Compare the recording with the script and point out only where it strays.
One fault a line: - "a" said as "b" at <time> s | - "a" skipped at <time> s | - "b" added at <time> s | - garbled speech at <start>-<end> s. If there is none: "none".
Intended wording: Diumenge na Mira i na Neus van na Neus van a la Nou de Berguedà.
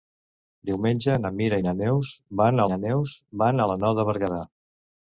none